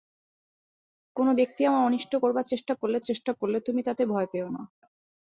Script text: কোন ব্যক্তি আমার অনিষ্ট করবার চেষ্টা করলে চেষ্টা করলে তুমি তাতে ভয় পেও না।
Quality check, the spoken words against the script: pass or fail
pass